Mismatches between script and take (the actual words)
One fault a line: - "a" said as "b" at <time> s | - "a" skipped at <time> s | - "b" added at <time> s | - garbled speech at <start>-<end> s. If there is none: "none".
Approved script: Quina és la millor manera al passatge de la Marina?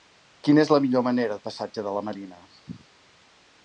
none